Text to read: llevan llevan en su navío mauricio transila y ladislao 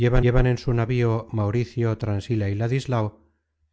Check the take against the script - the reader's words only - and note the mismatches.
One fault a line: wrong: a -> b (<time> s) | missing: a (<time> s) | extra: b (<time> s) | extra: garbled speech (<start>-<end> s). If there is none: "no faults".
no faults